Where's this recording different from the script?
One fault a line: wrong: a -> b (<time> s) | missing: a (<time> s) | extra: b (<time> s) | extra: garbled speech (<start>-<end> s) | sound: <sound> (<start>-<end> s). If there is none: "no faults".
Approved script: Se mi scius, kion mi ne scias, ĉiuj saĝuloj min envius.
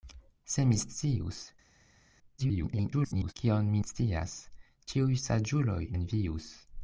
extra: garbled speech (2.4-3.3 s)
missing: ne (3.8 s)
missing: min (5.8 s)